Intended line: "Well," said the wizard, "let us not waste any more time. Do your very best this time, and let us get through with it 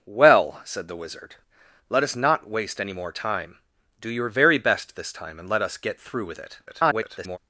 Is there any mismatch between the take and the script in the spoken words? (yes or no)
yes